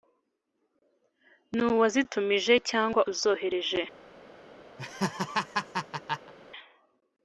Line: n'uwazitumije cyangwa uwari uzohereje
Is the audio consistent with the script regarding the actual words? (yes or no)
no